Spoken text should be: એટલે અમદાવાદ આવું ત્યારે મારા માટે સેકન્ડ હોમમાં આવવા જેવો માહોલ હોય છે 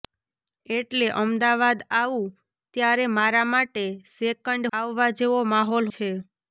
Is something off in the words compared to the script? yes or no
yes